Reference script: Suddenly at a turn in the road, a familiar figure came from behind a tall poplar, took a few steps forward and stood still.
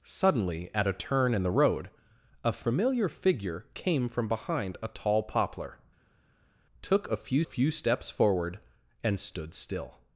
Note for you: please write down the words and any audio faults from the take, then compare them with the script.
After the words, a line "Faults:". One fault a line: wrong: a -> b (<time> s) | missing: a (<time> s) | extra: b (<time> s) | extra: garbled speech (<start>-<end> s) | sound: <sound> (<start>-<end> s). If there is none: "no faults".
Suddenly at a turn in the road, a familiar figure came from behind a tall poplar, took a few few steps forward and stood still.
Faults:
extra: few (7.4 s)